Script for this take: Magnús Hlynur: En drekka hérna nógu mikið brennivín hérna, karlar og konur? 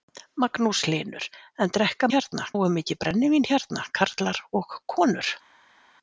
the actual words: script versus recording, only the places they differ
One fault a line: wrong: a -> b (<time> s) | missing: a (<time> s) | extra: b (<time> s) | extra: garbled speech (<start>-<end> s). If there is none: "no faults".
no faults